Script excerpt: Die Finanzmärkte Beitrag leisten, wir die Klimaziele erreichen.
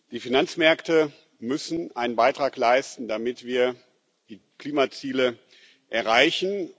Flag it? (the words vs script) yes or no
yes